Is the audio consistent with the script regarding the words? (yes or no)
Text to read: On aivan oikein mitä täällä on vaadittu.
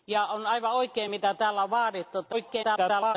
no